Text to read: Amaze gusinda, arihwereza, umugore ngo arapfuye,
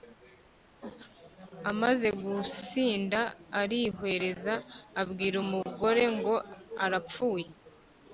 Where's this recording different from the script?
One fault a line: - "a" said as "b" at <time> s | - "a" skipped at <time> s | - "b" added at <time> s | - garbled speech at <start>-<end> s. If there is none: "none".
- "abwira" added at 5.0 s